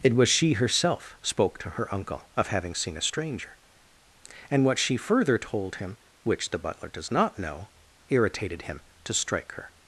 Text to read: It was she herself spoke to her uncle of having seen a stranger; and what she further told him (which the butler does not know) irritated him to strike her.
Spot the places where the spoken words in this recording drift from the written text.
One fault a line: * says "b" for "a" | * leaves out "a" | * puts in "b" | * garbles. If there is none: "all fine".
all fine